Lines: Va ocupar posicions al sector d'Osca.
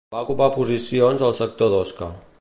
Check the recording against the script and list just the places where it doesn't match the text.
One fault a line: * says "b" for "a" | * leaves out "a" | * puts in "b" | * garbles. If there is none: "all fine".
all fine